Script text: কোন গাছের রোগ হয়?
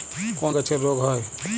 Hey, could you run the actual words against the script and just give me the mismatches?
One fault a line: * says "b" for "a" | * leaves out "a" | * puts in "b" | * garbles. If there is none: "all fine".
all fine